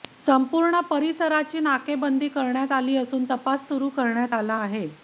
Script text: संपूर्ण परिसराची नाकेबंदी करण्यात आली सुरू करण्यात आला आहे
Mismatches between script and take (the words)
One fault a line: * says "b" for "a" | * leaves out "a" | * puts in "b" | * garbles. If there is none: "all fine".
* puts in "असून तपास"